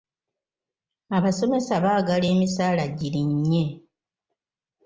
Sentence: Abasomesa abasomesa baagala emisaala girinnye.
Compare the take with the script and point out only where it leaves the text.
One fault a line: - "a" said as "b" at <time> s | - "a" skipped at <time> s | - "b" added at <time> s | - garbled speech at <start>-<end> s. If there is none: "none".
- "abasomesa" skipped at 1.7 s